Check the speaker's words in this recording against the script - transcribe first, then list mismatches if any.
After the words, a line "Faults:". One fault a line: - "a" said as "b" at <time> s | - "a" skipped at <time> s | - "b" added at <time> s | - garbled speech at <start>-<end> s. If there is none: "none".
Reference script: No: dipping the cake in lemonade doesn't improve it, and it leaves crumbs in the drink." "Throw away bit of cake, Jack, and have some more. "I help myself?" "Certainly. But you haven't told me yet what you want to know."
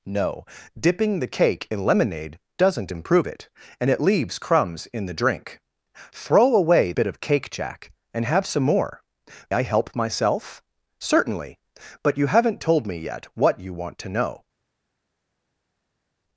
No: dipping the cake in lemonade doesn't improve it, and it leaves crumbs in the drink." "Throw away bit of cake, Jack, and have some more. "I help myself?" "Certainly. But you haven't told me yet what you want to know."
Faults:
none